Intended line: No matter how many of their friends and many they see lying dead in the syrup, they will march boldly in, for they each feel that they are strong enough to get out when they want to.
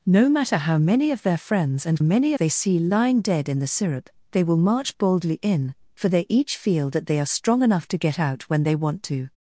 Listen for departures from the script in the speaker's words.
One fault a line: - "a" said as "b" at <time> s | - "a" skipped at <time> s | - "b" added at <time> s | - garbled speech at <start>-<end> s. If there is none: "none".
none